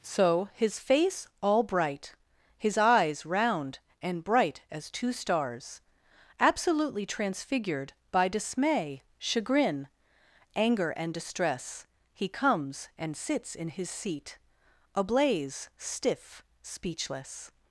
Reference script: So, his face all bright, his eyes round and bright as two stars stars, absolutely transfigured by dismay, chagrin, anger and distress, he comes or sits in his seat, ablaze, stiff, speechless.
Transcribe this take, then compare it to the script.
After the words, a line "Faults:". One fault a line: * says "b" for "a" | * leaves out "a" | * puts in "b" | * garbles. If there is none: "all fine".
So, his face all bright, his eyes round and bright as two stars, absolutely transfigured by dismay, chagrin, anger and distress, he comes and sits in his seat, ablaze, stiff, speechless.
Faults:
* leaves out "stars"
* says "and" for "or"